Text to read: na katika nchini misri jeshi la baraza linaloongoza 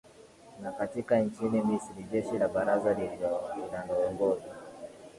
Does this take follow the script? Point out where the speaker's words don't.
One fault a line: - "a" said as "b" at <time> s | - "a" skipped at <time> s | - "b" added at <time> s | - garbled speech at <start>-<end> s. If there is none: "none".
none